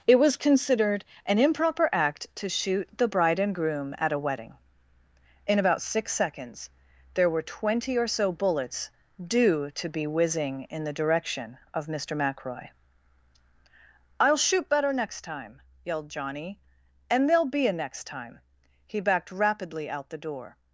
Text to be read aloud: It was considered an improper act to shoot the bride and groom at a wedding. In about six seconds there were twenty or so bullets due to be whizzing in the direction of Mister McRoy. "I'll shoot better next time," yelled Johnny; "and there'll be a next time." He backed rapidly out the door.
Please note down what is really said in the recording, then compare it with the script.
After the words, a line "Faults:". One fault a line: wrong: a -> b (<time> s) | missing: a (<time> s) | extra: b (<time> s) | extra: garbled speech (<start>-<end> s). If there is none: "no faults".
It was considered an improper act to shoot the bride and groom at a wedding. In about six seconds there were twenty or so bullets due to be whizzing in the direction of Mister McRoy. "I'll shoot better next time," yelled Johnny; "and there'll be a next time." He backed rapidly out the door.
Faults:
no faults